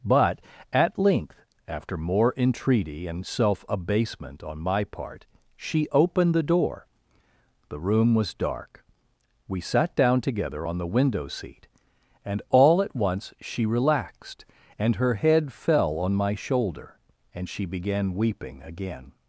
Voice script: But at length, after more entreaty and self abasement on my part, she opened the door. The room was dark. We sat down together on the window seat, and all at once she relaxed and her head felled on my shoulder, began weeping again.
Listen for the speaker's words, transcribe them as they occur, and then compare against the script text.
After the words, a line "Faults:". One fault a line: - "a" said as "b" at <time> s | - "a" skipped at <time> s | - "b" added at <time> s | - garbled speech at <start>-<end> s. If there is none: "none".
But at length, after more entreaty and self abasement on my part, she opened the door. The room was dark. We sat down together on the window seat, and all at once she relaxed and her head fell on my shoulder, and she began weeping again.
Faults:
- "felled" said as "fell" at 15.5 s
- "and she" added at 17.4 s